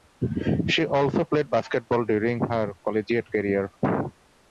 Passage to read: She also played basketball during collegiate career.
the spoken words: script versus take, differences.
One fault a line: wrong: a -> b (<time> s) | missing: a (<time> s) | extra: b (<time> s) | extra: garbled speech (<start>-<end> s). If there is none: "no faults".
extra: her (2.5 s)